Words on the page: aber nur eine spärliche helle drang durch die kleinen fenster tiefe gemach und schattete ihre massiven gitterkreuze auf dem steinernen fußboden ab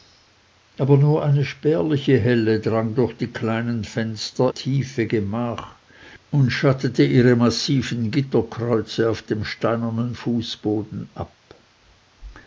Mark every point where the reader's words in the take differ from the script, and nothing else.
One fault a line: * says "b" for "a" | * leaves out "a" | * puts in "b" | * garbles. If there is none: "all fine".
all fine